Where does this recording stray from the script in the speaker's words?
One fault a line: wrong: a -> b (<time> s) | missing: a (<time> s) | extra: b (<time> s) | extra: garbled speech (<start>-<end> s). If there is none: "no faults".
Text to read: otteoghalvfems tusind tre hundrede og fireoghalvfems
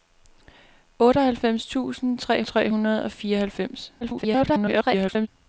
extra: tre (2.4 s)
extra: garbled speech (4.0-5.3 s)